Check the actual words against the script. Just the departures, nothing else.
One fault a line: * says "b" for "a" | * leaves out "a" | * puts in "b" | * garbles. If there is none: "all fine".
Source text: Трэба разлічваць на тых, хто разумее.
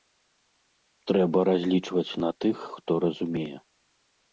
all fine